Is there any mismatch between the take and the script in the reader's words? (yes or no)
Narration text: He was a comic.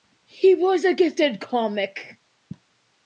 yes